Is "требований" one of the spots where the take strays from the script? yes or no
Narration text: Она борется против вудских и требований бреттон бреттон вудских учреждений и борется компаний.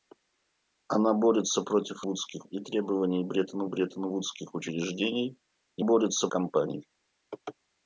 no